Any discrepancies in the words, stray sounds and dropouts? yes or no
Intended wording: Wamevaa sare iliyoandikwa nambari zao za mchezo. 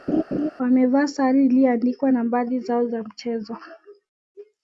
yes